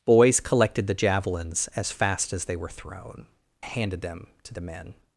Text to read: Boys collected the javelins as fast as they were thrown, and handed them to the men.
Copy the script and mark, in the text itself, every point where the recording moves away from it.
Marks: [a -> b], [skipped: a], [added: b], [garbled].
Boys collected the javelins as fast as they were thrown, [skipped: and] handed them to the men.